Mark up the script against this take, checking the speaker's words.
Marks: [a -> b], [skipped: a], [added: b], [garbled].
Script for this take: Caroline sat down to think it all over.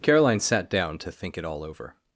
Caroline sat down to think it all over.